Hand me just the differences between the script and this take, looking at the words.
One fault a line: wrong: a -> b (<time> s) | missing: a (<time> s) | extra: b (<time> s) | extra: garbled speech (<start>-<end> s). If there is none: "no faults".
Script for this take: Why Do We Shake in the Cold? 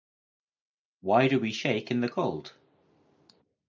no faults